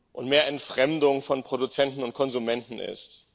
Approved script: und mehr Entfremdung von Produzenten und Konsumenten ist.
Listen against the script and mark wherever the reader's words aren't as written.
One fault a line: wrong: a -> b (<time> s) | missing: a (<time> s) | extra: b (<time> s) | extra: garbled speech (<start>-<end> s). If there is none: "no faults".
no faults